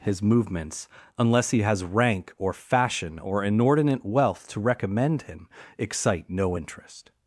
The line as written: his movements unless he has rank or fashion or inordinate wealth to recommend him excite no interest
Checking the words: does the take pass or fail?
pass